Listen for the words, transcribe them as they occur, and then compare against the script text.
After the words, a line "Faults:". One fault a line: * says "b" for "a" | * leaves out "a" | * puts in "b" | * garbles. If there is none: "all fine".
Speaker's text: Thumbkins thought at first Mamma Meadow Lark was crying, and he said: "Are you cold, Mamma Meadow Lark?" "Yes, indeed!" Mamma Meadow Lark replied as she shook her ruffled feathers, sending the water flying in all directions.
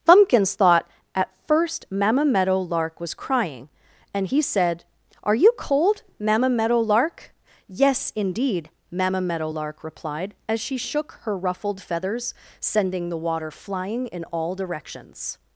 Thumbkins thought at first Mamma Meadow Lark was crying, and he said: "Are you cold, Mamma Meadow Lark?" "Yes, indeed!" Mamma Meadow Lark replied as she shook her ruffled feathers, sending the water flying in all directions.
Faults:
all fine